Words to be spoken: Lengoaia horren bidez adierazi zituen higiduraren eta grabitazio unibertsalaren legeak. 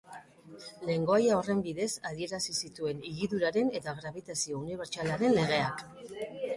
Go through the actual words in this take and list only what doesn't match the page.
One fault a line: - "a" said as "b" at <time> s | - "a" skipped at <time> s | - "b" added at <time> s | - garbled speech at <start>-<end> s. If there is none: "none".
none